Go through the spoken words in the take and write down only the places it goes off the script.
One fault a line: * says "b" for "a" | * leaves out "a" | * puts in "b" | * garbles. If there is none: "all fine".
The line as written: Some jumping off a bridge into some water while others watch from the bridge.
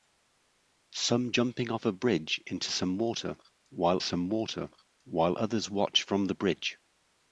* puts in "some water while"